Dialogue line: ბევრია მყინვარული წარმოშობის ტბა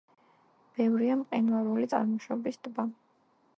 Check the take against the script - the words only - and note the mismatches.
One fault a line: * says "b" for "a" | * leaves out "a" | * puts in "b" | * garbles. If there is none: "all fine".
all fine